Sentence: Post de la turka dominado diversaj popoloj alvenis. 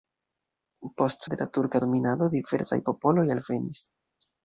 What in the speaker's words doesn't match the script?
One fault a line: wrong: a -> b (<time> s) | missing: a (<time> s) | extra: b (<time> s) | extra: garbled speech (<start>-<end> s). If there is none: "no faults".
no faults